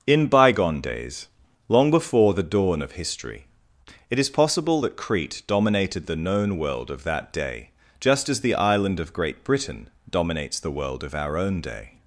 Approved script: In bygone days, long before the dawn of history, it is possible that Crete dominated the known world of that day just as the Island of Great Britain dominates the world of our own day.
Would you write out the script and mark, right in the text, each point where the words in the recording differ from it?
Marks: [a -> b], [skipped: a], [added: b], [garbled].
In bygone days, long before the dawn of history, it is possible that Crete dominated the known world of that day just as the Island of Great Britain dominates the world of our own day.